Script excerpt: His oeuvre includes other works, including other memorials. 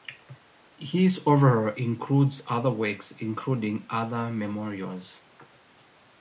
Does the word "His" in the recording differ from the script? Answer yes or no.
no